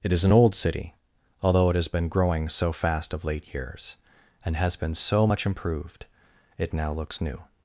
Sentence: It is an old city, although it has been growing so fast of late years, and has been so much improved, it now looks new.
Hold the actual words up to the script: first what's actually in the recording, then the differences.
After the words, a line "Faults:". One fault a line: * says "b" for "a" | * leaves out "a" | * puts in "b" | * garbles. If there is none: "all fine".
It is an old city, although it has been growing so fast of late years, and has been so much improved, it now looks new.
Faults:
all fine